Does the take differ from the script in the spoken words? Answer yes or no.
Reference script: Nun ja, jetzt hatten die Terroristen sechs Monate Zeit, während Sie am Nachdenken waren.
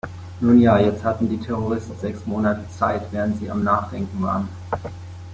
no